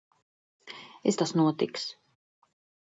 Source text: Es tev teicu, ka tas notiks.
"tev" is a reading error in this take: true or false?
true